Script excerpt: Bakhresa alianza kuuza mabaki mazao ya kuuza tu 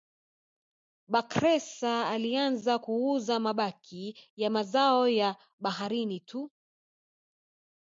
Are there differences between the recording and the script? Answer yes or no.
yes